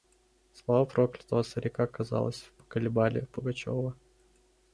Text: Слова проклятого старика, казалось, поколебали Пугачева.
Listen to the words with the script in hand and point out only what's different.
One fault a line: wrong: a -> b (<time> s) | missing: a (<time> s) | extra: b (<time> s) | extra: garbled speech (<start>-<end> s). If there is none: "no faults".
no faults